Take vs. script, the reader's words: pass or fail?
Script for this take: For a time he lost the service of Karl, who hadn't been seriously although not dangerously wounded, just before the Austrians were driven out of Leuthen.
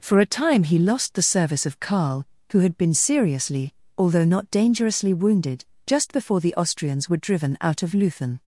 fail